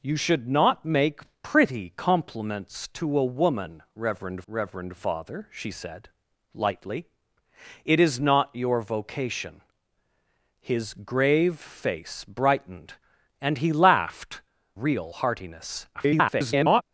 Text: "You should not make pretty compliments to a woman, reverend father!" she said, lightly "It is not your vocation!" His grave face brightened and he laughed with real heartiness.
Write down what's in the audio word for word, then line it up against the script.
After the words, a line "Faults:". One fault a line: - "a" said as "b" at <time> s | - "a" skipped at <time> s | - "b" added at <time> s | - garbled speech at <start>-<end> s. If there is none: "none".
"You should not make pretty compliments to a woman, reverend reverend father!" she said, lightly "It is not your vocation!" His grave face brightened and he laughed real heartiness. [garbled]
Faults:
- "reverend" added at 4.5 s
- "with" skipped at 14.4 s
- garbled speech at 15.9-16.8 s